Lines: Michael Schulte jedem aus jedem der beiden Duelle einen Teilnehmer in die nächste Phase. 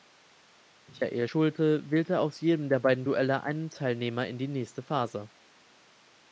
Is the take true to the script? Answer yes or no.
no